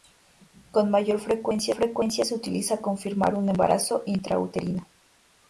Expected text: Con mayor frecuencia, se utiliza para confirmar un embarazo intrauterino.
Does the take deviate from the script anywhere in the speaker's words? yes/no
yes